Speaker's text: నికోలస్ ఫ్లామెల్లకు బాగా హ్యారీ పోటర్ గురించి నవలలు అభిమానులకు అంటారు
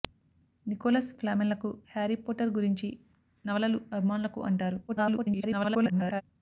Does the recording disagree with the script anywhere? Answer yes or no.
yes